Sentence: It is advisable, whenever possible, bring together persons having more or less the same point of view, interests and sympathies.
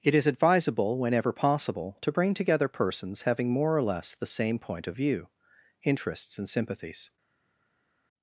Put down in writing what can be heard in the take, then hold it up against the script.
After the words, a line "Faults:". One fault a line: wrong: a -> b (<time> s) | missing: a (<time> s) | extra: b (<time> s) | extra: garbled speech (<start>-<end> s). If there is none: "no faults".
It is advisable, whenever possible, to bring together persons having more or less the same point of view, interests and sympathies.
Faults:
extra: to (2.0 s)